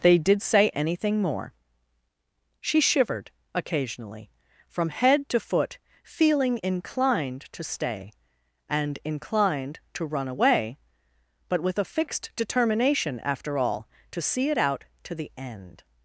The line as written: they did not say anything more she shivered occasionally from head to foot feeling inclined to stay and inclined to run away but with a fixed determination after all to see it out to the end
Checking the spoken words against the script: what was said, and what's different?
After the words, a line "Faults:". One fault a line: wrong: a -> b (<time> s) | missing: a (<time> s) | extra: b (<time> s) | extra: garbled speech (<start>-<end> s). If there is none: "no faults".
they did say anything more she shivered occasionally from head to foot feeling inclined to stay and inclined to run away but with a fixed determination after all to see it out to the end
Faults:
missing: not (0.4 s)